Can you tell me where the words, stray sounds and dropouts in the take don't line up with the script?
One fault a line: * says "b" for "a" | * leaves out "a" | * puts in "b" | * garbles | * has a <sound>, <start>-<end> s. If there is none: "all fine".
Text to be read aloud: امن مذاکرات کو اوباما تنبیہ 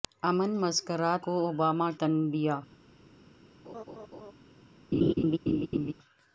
* has a laugh, 3.6-4.3 s
* has a laugh, 4.9-5.9 s